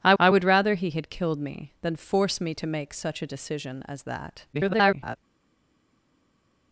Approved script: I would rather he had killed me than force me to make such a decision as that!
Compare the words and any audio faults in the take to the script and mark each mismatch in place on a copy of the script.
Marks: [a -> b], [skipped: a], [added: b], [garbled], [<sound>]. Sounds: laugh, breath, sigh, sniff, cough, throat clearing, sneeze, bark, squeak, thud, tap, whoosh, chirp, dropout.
I [added: I] would rather he had killed me than force me to make such a decision as that! [garbled]